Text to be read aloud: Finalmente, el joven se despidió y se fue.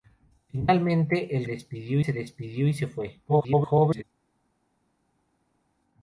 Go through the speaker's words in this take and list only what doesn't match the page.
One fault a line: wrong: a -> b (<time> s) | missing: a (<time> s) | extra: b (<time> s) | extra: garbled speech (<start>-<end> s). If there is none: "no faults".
wrong: joven -> despidió (1.4 s)
extra: garbled speech (3.3-4.0 s)